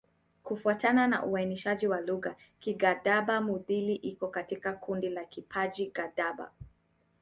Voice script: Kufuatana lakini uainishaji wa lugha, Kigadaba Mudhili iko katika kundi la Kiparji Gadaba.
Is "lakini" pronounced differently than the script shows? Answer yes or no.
yes